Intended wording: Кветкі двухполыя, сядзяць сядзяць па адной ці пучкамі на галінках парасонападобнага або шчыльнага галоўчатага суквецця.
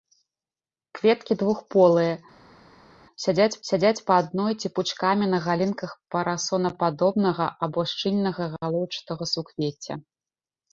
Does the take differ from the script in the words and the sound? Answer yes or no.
no